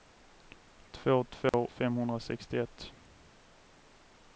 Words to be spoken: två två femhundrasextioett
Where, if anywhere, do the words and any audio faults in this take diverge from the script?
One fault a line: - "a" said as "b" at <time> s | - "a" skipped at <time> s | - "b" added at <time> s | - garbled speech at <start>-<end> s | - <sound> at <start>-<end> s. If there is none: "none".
- dropout at 1.5-1.5 s